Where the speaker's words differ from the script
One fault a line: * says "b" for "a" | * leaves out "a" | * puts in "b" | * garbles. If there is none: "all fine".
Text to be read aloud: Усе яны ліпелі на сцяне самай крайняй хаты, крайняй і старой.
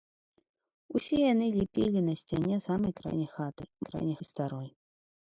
all fine